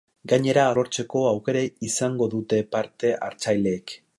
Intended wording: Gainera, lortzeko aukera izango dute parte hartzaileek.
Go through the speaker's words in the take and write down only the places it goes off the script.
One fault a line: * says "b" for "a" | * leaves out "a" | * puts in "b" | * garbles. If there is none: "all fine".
all fine